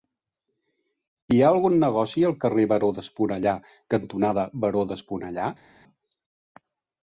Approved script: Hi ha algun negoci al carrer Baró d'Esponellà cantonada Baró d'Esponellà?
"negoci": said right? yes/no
yes